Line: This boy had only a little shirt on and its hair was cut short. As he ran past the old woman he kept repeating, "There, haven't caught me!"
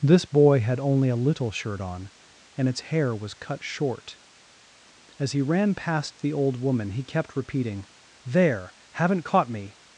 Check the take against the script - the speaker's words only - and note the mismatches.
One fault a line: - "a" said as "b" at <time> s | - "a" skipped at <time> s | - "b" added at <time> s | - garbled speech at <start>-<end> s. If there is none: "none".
none